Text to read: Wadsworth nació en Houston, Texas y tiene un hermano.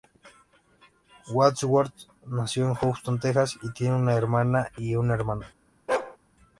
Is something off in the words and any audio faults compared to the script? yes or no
yes